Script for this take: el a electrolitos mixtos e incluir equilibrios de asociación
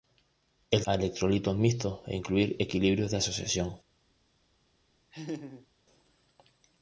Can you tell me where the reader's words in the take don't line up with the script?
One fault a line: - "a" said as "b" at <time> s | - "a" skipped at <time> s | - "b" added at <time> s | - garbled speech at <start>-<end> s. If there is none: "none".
none